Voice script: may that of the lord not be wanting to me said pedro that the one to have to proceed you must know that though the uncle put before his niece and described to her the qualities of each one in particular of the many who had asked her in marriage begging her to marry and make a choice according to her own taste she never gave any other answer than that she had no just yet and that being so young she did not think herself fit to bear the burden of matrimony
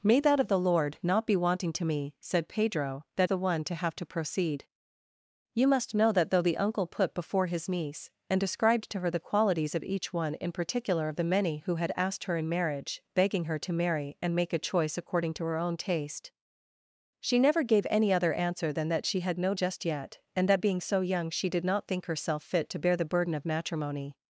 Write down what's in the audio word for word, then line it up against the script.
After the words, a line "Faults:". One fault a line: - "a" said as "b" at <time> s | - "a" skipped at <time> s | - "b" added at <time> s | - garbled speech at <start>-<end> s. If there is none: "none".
may that of the lord not be wanting to me said pedro that the one to have to proceed you must know that though the uncle put before his niece and described to her the qualities of each one in particular of the many who had asked her in marriage begging her to marry and make a choice according to her own taste she never gave any other answer than that she had no just yet and that being so young she did not think herself fit to bear the burden of matrimony
Faults:
none